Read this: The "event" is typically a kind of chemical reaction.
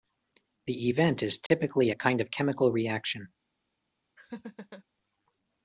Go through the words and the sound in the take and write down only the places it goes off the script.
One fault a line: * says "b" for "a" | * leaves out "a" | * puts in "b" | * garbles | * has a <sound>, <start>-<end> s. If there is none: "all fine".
* has a dropout, 1.5-1.5 s
* has a laugh, 4.2-4.8 s